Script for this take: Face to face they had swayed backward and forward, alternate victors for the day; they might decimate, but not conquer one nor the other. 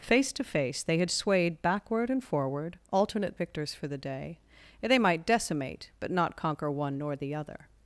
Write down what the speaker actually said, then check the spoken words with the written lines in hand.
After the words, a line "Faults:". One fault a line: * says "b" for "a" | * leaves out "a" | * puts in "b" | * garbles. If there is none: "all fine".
Face to face they had swayed backward and forward, alternate victors for the day; they might decimate, but not conquer one nor the other.
Faults:
all fine